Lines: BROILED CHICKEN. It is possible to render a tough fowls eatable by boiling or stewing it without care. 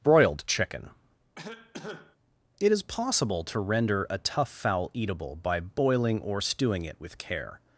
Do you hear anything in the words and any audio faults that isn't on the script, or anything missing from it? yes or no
yes